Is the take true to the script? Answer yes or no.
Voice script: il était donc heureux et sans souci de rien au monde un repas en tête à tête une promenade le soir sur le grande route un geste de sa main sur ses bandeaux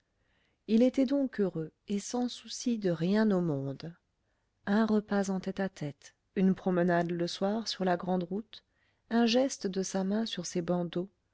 no